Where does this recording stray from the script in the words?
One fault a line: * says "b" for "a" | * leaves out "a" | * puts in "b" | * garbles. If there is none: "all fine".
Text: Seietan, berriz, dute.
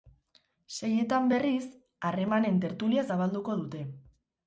* puts in "harremanen tertulia zabalduko"